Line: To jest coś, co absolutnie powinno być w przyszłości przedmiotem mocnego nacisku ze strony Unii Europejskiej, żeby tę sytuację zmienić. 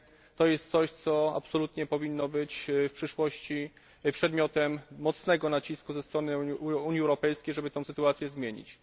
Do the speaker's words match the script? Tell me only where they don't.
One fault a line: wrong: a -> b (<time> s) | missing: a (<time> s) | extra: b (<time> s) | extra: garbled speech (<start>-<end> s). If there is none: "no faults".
no faults